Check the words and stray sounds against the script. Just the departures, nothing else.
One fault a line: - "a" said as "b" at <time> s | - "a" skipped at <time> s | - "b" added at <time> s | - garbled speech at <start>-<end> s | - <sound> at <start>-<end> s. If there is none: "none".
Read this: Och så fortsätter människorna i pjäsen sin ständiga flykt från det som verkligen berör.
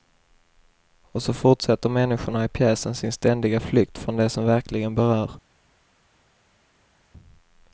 none